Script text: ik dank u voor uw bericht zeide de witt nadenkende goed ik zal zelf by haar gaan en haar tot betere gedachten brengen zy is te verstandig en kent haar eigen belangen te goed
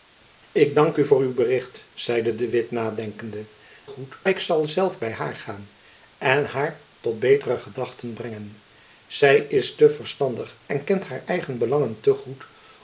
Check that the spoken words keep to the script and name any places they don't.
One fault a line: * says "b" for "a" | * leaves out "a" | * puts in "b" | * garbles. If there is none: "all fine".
all fine